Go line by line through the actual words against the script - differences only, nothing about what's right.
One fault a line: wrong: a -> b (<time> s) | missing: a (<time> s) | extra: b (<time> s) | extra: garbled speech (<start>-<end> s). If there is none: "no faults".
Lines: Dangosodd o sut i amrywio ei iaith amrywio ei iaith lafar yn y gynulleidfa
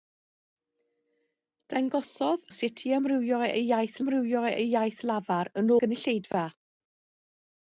no faults